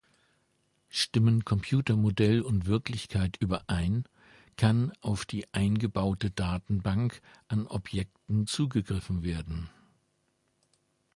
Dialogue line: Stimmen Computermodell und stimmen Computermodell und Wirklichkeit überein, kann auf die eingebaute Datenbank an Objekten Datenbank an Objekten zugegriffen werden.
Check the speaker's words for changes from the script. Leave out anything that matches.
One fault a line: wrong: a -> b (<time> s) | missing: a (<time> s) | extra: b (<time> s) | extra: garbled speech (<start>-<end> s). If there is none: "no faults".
missing: stimmen Computermodell und (2.6 s)
missing: Datenbank an Objekten (8.5 s)